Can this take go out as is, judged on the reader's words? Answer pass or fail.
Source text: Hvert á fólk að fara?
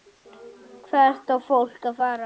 pass